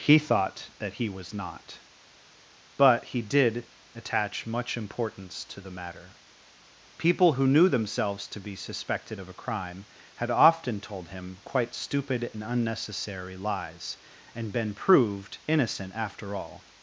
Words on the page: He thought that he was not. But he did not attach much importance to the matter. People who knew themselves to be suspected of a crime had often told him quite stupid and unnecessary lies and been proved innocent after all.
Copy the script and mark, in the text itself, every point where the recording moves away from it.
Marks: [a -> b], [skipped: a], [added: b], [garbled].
He thought that he was not. But he did [skipped: not] attach much importance to the matter. People who knew themselves to be suspected of a crime had often told him quite stupid and unnecessary lies and been proved innocent after all.